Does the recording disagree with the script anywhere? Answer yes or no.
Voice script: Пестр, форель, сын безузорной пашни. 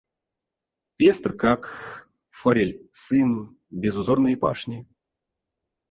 yes